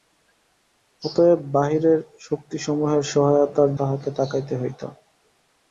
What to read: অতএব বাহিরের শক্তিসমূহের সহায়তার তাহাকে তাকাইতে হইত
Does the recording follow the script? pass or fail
pass